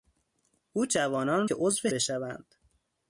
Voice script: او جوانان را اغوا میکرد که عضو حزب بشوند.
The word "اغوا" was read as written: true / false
false